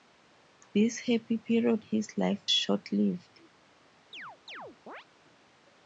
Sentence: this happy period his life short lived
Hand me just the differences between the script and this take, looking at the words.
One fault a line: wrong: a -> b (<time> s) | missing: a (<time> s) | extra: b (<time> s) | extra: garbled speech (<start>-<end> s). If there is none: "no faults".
no faults